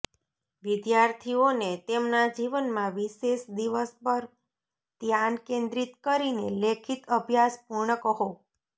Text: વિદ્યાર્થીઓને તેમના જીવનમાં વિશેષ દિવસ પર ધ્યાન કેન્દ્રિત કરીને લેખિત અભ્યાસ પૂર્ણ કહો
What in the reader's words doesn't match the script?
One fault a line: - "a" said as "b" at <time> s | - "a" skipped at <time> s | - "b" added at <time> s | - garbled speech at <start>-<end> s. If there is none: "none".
none